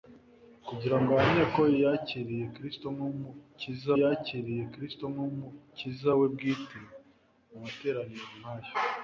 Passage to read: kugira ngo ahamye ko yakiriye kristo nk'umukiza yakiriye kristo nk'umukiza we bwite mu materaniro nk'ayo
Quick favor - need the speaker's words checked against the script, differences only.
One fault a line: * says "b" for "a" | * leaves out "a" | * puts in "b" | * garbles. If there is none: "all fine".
all fine